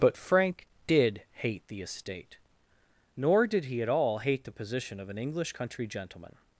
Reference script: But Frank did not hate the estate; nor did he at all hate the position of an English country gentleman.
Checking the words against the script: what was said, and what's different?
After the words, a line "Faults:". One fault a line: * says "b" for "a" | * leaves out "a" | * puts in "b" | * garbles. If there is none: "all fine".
But Frank did hate the estate; nor did he at all hate the position of an English country gentleman.
Faults:
* leaves out "not"